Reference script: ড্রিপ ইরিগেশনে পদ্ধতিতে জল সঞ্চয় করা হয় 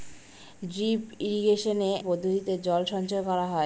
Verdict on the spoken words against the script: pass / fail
pass